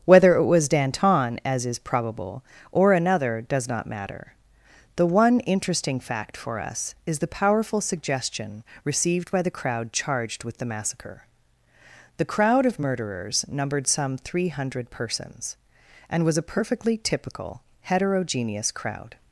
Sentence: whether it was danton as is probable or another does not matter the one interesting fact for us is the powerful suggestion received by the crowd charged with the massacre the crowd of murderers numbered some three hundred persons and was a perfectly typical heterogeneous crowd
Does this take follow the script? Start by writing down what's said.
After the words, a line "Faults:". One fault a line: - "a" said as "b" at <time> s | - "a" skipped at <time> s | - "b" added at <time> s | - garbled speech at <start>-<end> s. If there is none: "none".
whether it was danton as is probable or another does not matter the one interesting fact for us is the powerful suggestion received by the crowd charged with the massacre the crowd of murderers numbered some three hundred persons and was a perfectly typical heterogeneous crowd
Faults:
none